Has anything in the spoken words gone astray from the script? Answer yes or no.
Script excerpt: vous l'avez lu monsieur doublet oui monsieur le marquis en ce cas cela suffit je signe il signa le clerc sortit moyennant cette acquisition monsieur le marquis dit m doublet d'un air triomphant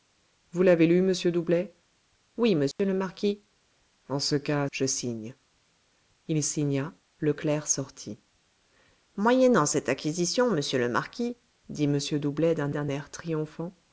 yes